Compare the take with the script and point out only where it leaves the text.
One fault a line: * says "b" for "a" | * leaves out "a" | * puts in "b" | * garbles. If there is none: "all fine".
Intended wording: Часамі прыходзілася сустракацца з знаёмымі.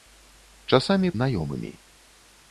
* leaves out "прыходзілася сустракацца з"